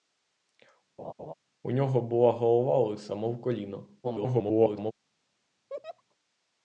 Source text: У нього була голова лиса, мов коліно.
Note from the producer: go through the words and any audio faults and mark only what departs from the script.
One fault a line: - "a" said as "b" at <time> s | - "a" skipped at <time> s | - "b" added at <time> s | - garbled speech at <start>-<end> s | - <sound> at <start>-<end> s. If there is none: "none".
- laugh at 1.0-1.3 s
- garbled speech at 4.0-4.9 s
- laugh at 5.7-6.0 s